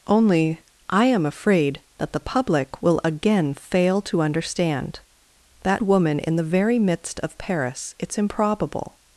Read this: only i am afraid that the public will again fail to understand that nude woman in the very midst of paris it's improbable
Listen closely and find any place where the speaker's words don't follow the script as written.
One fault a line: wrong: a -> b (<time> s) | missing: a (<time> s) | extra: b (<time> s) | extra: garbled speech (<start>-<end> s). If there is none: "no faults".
missing: nude (5.8 s)